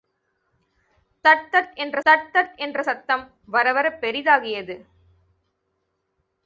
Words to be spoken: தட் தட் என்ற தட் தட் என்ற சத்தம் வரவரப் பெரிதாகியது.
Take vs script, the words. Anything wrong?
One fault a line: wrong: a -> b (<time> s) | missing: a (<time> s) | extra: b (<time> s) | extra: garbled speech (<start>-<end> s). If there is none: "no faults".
no faults